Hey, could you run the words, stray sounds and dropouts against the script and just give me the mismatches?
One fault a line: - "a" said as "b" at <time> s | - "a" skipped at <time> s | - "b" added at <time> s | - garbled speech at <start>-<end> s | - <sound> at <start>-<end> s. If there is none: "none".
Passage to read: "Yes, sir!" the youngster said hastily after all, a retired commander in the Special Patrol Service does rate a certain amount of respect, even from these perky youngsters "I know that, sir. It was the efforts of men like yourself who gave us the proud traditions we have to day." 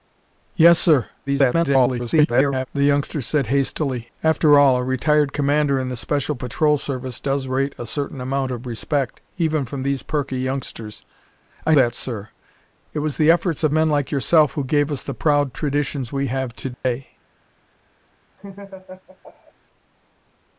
- garbled speech at 1.3-2.7 s
- "know" skipped at 11.8 s
- dropout at 16.7-16.8 s
- laugh at 18.4-19.5 s